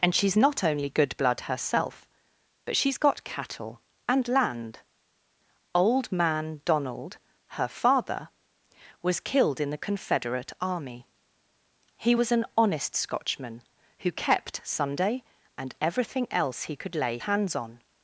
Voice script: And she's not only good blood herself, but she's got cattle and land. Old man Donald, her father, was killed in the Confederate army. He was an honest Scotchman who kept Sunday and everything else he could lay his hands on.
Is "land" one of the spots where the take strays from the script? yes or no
no